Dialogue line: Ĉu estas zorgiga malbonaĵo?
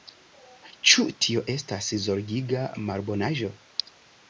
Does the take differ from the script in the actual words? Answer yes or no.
yes